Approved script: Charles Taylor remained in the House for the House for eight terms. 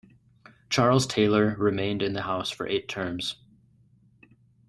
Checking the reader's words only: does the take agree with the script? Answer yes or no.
no